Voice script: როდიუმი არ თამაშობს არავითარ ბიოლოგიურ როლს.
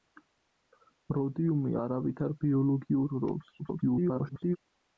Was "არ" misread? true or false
true